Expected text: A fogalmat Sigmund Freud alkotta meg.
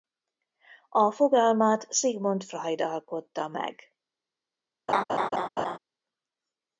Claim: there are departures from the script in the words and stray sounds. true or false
true